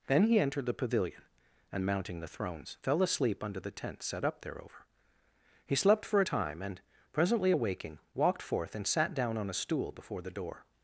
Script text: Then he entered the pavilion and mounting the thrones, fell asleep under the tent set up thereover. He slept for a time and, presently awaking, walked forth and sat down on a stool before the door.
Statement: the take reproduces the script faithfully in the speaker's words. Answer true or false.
true